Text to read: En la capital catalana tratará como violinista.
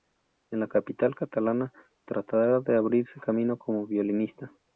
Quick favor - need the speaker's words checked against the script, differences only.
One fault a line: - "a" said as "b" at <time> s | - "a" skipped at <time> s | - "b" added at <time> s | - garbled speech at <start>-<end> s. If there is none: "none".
- "de abrirse camino" added at 2.6 s